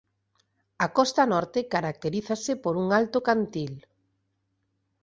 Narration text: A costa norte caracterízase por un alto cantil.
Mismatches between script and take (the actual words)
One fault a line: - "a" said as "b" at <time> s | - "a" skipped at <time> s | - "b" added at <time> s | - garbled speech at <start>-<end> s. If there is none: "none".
none